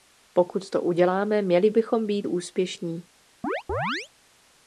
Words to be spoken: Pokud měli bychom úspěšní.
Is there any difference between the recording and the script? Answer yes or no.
yes